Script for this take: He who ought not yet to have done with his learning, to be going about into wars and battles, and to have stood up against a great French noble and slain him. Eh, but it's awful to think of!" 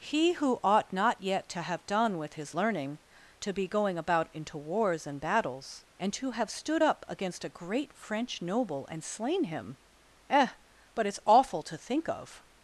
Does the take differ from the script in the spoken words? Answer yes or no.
no